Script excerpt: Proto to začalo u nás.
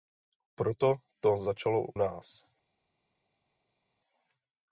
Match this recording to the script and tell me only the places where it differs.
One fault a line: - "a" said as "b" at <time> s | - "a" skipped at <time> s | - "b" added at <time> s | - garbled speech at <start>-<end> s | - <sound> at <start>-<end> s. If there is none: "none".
- "u" skipped at 1.9 s